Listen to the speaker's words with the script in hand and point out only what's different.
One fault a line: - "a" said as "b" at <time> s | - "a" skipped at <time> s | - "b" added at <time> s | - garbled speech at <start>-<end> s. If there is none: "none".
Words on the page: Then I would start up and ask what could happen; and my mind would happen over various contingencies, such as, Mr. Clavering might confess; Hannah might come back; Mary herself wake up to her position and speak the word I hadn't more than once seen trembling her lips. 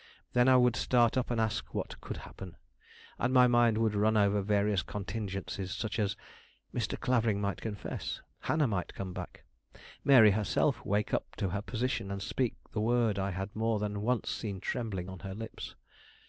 - "happen" said as "run" at 3.9 s
- "hadn't" said as "had" at 13.3 s
- "on" added at 15.1 s